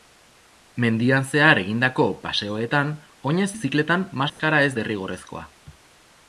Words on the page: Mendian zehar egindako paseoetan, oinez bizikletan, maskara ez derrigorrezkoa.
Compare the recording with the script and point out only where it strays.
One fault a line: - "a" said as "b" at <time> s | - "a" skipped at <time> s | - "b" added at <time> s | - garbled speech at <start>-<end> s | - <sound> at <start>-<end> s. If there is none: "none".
- dropout at 4.3-4.4 s